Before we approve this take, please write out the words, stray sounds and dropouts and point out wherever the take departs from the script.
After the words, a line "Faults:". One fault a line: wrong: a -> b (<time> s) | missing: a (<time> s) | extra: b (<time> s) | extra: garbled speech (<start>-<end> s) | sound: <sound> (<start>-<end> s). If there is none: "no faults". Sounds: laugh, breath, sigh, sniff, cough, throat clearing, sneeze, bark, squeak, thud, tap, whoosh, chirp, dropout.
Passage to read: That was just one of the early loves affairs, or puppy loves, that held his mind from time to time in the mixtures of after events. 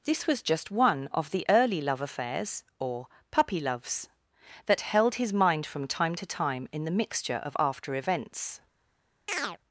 This was just one of the early love affairs, or puppy loves, that held his mind from time to time in the mixture of after events.
Faults:
wrong: That -> This (0.0 s)
wrong: loves -> love (1.8 s)
wrong: mixtures -> mixture (7.0 s)
sound: chirp (9.3-9.6 s)